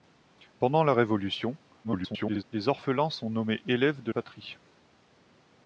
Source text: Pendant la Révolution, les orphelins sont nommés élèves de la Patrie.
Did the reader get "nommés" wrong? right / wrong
right